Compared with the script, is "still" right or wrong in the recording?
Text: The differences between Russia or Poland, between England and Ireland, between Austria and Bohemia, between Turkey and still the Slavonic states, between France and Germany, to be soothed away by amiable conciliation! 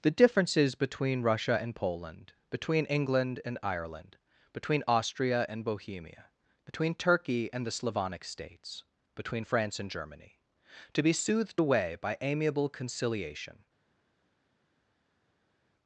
wrong